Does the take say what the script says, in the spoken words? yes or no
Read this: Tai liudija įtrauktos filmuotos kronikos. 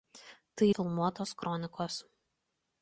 no